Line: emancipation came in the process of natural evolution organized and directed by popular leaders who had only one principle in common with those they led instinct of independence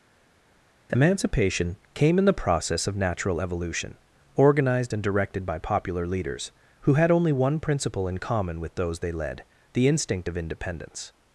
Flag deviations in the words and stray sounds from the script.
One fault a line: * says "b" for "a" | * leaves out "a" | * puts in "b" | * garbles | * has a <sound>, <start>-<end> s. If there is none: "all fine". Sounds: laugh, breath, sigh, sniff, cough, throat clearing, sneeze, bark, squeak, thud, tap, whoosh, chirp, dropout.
* puts in "the"